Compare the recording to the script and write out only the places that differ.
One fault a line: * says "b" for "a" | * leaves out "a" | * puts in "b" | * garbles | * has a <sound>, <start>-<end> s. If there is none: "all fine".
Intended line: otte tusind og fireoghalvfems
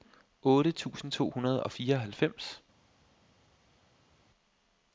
* puts in "to hundrede"